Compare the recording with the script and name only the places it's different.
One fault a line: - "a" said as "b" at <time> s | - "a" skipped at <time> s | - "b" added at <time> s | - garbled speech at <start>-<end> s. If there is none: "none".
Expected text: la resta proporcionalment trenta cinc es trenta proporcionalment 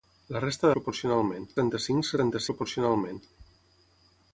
none